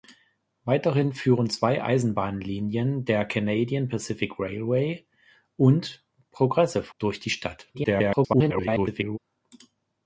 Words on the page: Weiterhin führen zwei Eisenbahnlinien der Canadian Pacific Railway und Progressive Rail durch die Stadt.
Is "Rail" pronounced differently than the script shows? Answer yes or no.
yes